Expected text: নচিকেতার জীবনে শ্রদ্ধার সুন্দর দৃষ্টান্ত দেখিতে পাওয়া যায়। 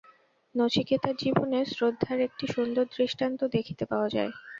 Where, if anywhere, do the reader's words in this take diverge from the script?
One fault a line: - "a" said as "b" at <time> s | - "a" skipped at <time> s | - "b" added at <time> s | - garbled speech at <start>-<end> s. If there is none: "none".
- "একটি" added at 2.3 s